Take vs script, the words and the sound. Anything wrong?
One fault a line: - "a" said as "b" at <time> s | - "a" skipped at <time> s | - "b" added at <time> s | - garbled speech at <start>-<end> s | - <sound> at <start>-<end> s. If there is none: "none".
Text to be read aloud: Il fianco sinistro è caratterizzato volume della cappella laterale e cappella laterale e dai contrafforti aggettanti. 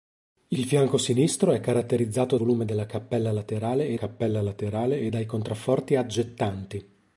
none